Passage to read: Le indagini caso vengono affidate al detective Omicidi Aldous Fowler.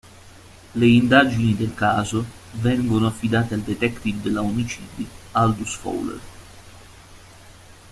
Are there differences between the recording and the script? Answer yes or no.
yes